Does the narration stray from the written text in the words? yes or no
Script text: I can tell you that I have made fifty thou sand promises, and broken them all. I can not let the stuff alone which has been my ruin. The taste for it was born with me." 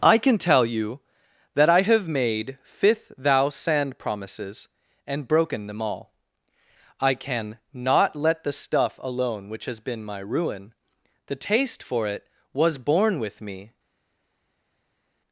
yes